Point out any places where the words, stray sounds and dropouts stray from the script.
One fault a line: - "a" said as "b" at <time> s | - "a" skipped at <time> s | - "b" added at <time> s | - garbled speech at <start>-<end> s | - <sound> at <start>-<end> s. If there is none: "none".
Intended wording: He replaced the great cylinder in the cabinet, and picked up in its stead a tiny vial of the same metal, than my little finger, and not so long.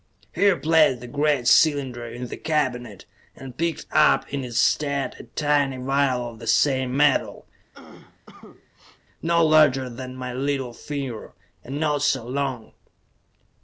- cough at 7.7-9.0 s
- "no larger" added at 9.2 s